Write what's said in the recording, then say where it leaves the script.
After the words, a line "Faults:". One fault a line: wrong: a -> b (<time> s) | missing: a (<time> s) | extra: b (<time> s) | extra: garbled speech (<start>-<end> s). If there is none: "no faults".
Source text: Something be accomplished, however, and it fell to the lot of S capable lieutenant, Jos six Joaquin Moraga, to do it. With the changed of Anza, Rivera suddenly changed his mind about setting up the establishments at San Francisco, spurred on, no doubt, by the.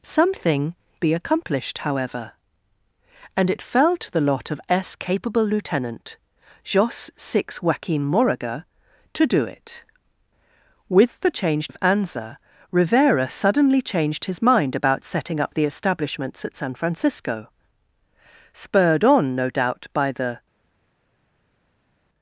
Something be accomplished, however, and it fell to the lot of S capable lieutenant, Jos six Joaquin Moraga, to do it. With the changed of Anza, Rivera suddenly changed his mind about setting up the establishments at San Francisco, spurred on, no doubt, by the.
Faults:
no faults